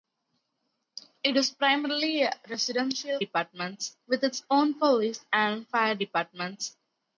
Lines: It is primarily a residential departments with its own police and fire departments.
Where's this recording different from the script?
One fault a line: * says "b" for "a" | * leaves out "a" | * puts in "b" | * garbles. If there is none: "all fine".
all fine